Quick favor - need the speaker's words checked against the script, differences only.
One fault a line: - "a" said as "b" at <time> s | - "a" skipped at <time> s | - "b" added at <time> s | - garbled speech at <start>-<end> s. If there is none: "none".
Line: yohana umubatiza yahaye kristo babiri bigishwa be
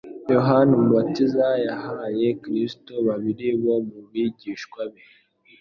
- "bo mu" added at 3.6 s